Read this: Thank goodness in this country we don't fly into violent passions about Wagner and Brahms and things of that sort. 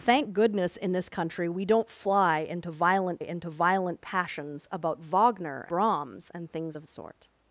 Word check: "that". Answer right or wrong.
wrong